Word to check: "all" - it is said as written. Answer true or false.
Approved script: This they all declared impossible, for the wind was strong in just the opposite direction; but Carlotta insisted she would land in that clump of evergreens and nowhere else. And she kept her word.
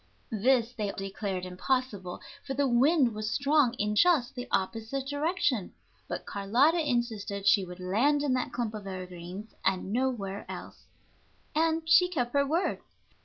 false